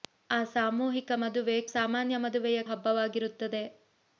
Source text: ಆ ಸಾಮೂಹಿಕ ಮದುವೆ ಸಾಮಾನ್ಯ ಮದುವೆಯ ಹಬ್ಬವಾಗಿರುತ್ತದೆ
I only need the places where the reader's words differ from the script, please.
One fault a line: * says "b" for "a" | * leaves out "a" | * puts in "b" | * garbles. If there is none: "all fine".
all fine